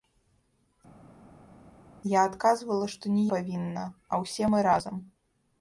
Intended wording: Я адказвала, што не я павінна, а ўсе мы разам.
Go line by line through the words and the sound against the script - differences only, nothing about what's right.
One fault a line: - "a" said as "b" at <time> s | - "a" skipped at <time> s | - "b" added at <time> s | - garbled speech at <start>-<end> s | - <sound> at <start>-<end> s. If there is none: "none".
- "я" skipped at 3.2 s